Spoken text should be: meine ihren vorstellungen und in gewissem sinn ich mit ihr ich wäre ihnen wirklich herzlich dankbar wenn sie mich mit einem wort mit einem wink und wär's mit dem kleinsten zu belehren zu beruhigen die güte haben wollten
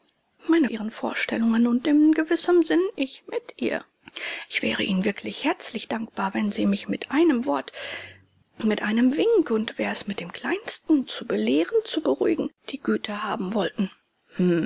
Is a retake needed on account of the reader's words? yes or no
no